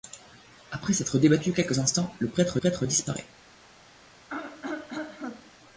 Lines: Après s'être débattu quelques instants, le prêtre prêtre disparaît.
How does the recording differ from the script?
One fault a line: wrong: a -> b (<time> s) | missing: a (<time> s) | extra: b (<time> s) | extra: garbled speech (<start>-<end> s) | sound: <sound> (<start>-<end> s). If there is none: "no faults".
sound: throat clearing (4.3-5.5 s)